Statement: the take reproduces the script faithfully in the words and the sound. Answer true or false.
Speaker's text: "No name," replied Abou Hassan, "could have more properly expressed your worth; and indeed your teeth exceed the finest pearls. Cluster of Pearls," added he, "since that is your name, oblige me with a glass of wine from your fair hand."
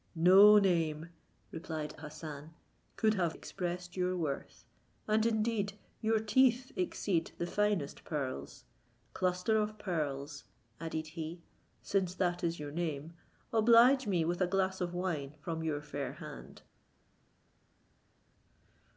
false